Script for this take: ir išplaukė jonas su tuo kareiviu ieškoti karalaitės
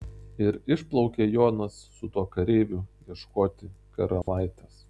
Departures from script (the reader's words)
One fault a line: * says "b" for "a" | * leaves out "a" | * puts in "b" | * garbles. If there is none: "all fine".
all fine